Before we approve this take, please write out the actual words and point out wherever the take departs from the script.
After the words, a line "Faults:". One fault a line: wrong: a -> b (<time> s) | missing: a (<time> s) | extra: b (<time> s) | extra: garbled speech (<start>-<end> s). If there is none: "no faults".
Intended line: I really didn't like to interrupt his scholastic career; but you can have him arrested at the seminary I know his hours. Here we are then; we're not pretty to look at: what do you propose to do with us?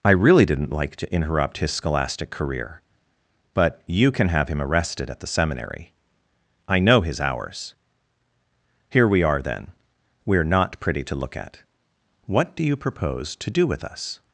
I really didn't like to interrupt his scholastic career; but you can have him arrested at the seminary I know his hours. Here we are then; we're not pretty to look at: what do you propose to do with us?
Faults:
no faults